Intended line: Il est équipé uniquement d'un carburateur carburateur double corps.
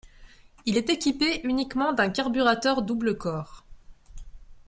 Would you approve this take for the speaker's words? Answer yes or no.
no